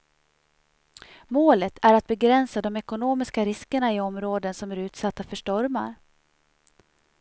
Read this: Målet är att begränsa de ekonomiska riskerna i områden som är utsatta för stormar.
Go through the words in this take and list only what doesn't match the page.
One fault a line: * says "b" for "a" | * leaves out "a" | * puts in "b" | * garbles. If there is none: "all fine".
all fine